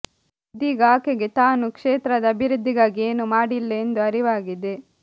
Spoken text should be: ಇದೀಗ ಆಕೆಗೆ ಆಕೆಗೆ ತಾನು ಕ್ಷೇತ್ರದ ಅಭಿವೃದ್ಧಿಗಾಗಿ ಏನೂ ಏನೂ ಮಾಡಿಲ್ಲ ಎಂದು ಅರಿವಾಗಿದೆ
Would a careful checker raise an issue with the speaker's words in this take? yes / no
yes